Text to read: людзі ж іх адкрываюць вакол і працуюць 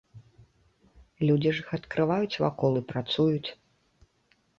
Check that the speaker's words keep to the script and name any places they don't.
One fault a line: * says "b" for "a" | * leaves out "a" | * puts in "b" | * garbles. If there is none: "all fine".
all fine